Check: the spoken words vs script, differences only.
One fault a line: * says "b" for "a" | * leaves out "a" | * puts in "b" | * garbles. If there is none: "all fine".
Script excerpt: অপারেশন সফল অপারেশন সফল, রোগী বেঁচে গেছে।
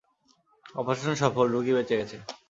* leaves out "অপারেশন সফল"